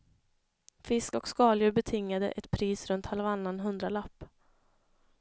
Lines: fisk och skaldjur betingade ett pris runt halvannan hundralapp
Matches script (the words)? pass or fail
pass